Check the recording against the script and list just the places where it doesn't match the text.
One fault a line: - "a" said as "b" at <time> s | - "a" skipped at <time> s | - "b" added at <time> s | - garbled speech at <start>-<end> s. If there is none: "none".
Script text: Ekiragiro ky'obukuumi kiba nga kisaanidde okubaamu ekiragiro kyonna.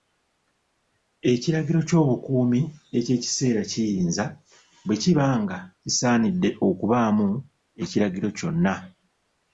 - "eky'ekiseera kiyinza bwe" added at 3.0 s